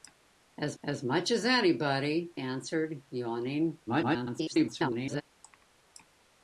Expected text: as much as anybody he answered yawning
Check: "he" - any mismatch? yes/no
yes